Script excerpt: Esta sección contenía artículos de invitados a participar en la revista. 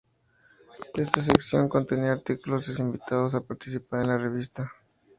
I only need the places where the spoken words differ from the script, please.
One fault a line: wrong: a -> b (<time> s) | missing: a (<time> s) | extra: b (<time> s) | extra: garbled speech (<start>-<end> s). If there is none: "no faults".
no faults